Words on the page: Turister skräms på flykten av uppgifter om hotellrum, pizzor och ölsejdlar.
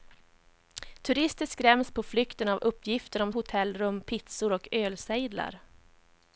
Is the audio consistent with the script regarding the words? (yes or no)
yes